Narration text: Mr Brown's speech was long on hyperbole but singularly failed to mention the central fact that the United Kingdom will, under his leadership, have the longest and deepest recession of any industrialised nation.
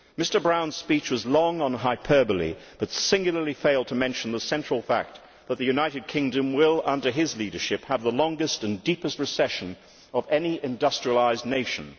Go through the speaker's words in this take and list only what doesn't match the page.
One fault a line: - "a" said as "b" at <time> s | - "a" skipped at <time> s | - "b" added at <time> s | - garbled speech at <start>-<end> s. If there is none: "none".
none